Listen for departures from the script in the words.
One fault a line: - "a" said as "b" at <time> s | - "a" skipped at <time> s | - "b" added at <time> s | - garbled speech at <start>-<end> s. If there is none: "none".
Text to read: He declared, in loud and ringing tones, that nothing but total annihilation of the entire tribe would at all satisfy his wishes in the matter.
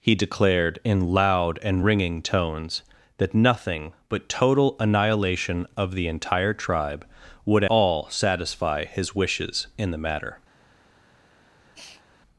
- "at" skipped at 7.6 s